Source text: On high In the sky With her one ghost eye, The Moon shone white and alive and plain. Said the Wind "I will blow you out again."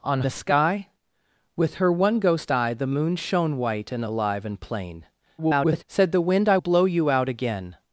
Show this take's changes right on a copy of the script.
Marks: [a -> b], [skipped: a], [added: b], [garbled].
On [skipped: high In] the sky With her one ghost eye, The Moon shone white and alive and plain. [garbled] Said the Wind "I [skipped: will] blow you out again."